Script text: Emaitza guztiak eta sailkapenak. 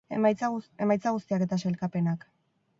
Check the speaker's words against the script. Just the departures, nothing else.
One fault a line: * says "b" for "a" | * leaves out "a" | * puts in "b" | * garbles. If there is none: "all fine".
all fine